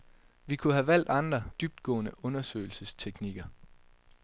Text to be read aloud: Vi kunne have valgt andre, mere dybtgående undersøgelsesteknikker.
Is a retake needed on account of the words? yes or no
yes